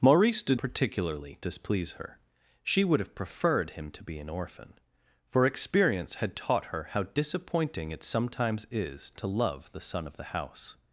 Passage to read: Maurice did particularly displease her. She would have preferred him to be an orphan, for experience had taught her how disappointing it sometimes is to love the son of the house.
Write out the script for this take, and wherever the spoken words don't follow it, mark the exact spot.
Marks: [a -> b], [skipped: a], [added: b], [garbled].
Maurice did particularly displease her. She would have preferred him to be an orphan, for experience had taught her how disappointing it sometimes is to love the son of the house.